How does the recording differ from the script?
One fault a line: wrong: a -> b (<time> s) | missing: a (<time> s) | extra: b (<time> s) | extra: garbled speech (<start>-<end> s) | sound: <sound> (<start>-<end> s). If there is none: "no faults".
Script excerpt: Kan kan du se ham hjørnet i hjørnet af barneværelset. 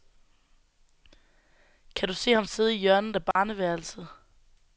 missing: kan (2.1 s)
wrong: hjørnet -> sidde (2.4 s)
sound: dropout (3.3-3.4 s)